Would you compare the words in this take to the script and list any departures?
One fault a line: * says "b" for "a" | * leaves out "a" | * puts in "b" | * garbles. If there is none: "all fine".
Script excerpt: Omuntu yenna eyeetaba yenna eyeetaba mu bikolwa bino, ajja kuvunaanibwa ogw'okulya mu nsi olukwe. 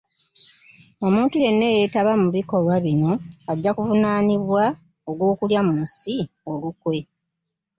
* leaves out "yenna eyeetaba"